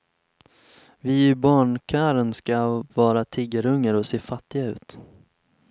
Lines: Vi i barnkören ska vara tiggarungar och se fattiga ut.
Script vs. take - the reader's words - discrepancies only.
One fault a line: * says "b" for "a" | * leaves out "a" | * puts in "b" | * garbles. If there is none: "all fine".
all fine